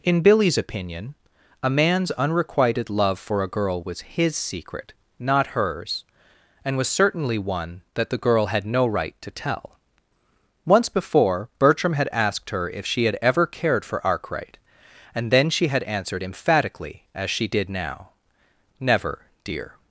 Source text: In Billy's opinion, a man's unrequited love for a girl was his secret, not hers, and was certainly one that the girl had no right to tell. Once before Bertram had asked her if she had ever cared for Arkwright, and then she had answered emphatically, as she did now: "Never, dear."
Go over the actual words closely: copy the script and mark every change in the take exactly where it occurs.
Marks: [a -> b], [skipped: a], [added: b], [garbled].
In Billy's opinion, a man's unrequited love for a girl was his secret, not hers, and was certainly one that the girl had no right to tell. Once before Bertram had asked her if she had ever cared for Arkwright, and then she had answered emphatically, as she did now: "Never, dear."